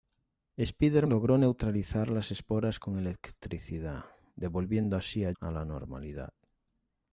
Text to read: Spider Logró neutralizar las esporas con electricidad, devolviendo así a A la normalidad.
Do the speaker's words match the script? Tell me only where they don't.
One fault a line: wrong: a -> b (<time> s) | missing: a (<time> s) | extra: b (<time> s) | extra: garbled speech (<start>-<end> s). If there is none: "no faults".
no faults